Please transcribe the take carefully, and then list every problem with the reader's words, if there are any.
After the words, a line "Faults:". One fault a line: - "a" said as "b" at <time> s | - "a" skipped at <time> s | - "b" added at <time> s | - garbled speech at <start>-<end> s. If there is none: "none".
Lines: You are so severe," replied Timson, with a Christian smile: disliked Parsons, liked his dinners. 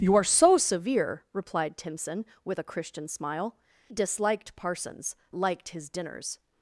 You are so severe," replied Timson, with a Christian smile: disliked Parsons, liked his dinners.
Faults:
none